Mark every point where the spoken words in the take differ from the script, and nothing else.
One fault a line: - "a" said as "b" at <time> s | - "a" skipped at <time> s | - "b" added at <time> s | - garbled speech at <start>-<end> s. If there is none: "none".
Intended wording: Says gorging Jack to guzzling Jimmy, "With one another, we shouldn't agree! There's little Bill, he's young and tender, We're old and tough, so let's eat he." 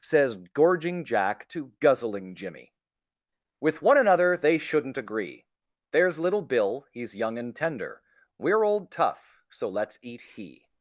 - "we" said as "they" at 4.4 s
- "and" skipped at 8.9 s